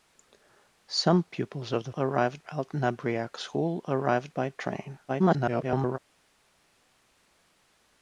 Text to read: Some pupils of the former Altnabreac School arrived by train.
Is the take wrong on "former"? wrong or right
wrong